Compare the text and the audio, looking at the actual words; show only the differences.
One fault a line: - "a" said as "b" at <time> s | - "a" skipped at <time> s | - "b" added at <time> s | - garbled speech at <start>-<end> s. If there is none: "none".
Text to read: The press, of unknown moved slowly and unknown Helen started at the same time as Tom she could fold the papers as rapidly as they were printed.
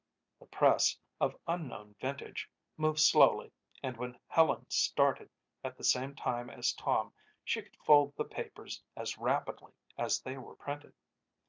- "vintage" added at 2.0 s
- "unknown" said as "when" at 4.0 s